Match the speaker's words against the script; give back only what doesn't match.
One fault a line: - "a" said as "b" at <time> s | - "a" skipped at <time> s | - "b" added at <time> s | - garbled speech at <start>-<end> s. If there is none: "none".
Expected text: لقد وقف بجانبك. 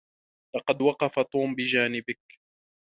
- "توم" added at 1.2 s